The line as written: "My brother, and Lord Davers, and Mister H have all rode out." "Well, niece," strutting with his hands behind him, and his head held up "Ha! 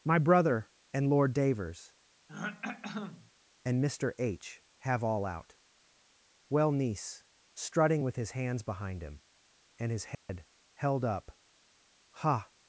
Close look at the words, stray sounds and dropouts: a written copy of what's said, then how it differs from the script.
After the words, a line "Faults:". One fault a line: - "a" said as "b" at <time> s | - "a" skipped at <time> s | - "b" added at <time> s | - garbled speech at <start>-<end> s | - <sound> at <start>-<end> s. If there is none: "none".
"My brother, and Lord Davers, and Mister H have all out." "Well, niece," strutting with his hands behind him, and his head held up "Ha!
Faults:
- throat clearing at 2.3-3.3 s
- "rode" skipped at 5.2 s
- dropout at 10.1-10.3 s